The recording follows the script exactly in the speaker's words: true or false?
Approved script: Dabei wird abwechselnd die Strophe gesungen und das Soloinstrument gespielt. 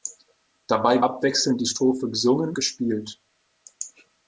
false